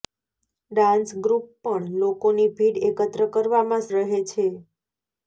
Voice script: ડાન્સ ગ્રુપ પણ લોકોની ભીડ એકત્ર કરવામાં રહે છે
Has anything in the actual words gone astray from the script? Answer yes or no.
no